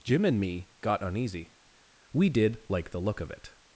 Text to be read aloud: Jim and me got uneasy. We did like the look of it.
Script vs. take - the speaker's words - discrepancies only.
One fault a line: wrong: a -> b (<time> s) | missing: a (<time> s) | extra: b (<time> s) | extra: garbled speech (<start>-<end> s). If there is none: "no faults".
no faults